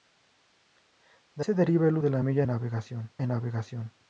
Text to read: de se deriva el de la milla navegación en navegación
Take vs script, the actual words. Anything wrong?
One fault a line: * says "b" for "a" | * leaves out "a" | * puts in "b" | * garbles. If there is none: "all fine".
all fine